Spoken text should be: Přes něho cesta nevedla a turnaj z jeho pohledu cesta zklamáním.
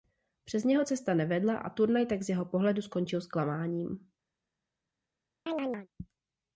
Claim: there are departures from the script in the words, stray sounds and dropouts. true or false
true